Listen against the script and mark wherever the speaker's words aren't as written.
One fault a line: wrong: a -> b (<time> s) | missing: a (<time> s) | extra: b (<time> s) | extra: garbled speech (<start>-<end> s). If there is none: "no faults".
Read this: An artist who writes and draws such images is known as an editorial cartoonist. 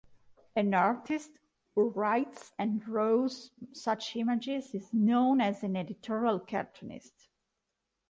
no faults